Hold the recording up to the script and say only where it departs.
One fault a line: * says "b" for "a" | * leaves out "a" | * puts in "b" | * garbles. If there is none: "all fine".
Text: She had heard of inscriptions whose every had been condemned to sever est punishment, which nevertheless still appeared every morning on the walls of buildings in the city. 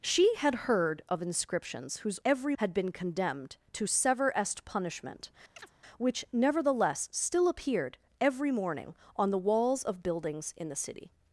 all fine